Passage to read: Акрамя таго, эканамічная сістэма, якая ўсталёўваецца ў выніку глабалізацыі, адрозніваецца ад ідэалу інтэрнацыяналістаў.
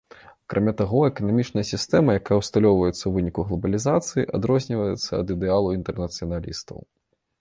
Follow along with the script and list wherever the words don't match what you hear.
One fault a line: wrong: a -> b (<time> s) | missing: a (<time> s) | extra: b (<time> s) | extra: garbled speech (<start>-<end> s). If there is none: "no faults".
no faults